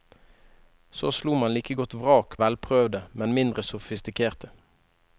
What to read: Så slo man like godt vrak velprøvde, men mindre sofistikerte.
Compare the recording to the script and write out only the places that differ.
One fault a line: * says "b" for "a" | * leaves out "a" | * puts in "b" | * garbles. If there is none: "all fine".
all fine